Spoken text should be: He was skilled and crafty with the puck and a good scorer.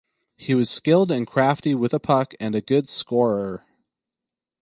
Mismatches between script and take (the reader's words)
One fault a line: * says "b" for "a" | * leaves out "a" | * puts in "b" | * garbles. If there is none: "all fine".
all fine